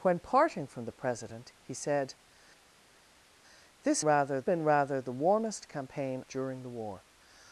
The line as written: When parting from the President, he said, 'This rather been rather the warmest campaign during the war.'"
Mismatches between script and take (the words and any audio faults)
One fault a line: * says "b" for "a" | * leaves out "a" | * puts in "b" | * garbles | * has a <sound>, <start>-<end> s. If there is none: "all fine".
all fine